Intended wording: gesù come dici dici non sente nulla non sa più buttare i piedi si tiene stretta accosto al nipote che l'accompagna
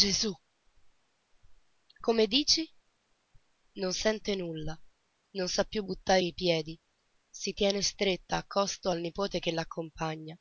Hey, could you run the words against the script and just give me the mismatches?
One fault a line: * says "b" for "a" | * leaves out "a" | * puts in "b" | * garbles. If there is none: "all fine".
* leaves out "dici"